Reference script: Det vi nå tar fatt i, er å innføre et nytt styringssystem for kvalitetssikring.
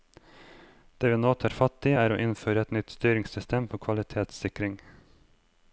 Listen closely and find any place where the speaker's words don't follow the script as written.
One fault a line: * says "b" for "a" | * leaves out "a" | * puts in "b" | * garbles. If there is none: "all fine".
all fine